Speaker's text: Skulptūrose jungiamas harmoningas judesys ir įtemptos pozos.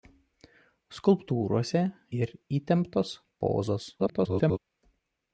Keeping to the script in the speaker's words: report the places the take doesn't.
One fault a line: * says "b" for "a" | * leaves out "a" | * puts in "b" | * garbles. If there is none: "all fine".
* leaves out "jungiamas harmoningas judesys"
* garbles